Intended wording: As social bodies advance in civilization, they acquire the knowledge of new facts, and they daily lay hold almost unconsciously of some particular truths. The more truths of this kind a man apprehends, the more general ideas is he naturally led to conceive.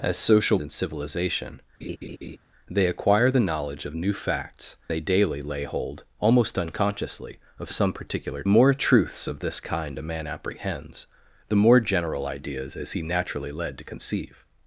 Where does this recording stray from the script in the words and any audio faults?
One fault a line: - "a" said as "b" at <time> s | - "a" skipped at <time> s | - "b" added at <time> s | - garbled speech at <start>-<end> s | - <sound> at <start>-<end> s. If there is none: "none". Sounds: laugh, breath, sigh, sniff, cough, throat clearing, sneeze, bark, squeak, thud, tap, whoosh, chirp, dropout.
- "bodies advance" skipped at 0.6 s
- laugh at 1.8-2.4 s
- "and" skipped at 4.8 s
- "truths The" skipped at 8.4 s